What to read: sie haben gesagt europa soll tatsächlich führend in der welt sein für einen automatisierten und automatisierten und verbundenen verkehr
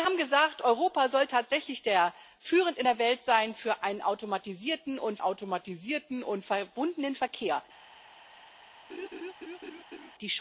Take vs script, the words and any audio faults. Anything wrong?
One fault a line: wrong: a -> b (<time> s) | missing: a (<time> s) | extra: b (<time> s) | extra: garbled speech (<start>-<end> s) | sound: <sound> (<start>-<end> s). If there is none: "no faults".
sound: laugh (8.9-10.1 s)